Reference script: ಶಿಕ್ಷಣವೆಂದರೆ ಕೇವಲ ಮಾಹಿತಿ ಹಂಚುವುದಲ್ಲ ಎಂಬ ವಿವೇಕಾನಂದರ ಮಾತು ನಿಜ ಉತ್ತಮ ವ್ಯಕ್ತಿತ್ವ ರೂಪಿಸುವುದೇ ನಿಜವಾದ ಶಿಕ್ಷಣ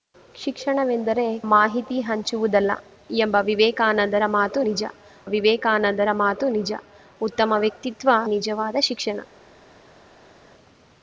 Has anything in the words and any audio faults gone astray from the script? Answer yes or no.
yes